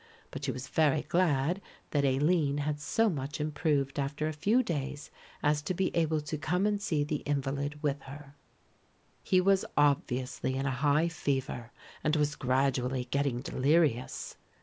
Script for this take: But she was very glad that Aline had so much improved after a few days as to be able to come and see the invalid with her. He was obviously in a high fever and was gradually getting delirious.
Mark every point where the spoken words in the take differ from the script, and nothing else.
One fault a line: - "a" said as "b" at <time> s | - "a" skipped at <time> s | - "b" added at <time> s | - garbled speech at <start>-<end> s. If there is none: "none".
none